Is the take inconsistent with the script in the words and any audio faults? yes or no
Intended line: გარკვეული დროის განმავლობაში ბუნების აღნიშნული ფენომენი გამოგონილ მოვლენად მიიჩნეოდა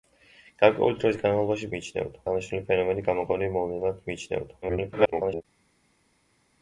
yes